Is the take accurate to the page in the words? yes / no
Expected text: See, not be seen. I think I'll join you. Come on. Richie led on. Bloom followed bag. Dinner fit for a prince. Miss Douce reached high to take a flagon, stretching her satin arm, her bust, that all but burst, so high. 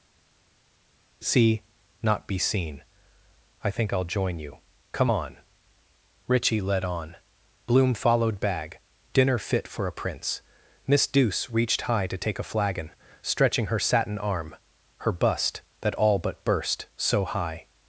yes